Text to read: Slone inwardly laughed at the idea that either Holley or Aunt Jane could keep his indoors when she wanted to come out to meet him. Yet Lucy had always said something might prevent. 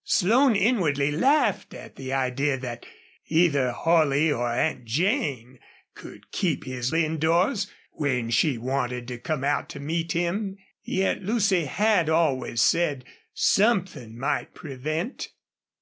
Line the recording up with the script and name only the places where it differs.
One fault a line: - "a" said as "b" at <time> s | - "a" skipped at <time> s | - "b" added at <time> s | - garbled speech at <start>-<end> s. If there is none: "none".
none